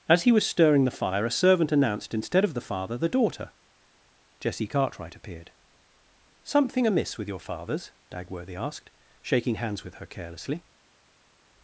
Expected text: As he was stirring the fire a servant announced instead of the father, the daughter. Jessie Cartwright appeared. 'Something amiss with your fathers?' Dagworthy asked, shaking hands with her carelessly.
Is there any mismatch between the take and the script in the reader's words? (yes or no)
no